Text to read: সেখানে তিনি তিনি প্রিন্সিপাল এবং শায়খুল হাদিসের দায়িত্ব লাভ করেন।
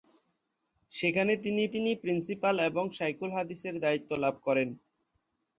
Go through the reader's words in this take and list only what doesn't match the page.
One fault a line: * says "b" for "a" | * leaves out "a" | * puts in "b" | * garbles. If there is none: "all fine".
all fine